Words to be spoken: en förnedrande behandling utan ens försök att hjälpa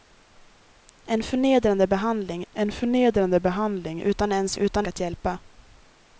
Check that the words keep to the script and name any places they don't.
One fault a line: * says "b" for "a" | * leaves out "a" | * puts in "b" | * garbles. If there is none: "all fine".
* puts in "en förnedrande behandling"
* says "utan" for "försök"